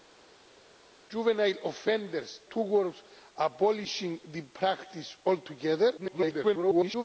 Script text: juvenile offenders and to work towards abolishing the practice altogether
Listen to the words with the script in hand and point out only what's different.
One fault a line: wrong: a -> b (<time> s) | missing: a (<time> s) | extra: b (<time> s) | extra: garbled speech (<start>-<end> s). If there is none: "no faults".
missing: and to work (2.4 s)
extra: garbled speech (6.0-7.0 s)